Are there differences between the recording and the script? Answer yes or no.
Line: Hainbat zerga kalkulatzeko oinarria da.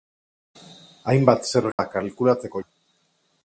yes